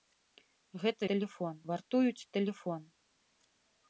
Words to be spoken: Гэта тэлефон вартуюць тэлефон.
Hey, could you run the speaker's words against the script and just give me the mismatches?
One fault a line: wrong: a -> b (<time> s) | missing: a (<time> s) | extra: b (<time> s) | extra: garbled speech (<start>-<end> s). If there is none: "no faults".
no faults